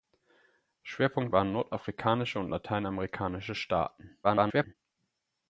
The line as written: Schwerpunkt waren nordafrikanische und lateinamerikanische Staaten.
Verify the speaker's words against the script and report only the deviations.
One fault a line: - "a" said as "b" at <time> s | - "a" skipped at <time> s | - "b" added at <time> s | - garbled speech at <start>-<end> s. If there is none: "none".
- garbled speech at 4.2-4.7 s